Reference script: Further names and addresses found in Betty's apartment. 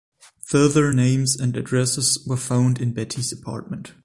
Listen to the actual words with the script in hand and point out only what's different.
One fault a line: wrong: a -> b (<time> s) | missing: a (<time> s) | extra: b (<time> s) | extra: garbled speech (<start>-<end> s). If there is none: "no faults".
extra: were (2.3 s)